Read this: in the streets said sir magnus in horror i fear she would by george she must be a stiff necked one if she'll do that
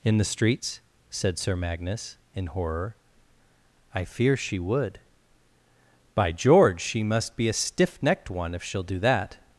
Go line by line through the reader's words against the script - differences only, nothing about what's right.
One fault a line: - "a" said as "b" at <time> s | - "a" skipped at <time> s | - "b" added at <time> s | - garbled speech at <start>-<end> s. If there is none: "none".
none